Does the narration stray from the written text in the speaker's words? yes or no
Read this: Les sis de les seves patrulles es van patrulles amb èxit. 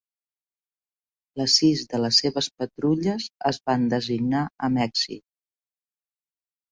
yes